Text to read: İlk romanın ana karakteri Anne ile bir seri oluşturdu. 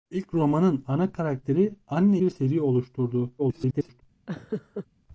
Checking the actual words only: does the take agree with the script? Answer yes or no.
no